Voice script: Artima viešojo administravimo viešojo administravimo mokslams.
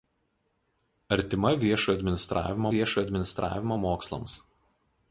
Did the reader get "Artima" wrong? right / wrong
right